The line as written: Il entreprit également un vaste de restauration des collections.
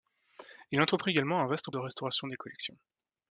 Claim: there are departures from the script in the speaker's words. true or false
false